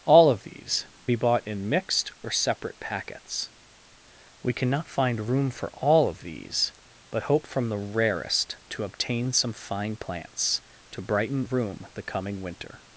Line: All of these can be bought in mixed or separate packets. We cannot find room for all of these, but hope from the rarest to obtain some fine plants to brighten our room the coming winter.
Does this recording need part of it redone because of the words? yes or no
yes